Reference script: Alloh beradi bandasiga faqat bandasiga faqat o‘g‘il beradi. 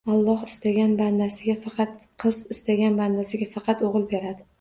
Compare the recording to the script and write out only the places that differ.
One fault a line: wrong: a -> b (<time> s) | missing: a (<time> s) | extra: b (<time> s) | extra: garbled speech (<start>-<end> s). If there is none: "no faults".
wrong: beradi -> istagan (0.5 s)
extra: qiz istagan (2.2 s)